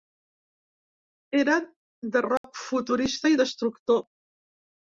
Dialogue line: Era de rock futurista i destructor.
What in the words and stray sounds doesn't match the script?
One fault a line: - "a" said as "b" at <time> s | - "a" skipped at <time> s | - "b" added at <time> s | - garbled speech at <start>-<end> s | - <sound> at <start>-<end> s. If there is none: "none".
- dropout at 2.4-2.4 s